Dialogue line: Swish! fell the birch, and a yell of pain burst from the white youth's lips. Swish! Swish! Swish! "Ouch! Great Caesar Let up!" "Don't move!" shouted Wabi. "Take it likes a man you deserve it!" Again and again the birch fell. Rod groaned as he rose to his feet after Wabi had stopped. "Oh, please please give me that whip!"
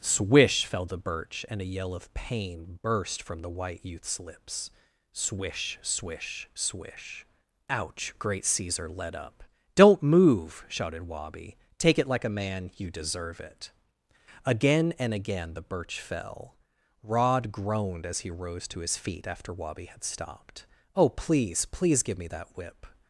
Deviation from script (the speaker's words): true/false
true